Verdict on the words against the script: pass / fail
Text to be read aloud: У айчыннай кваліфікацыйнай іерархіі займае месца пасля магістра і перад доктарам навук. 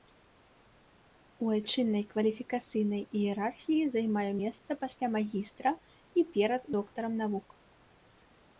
pass